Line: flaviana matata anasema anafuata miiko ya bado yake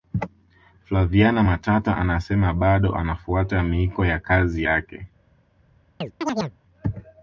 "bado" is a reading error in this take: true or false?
true